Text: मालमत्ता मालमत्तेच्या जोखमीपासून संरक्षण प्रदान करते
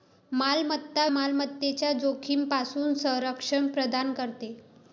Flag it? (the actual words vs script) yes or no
no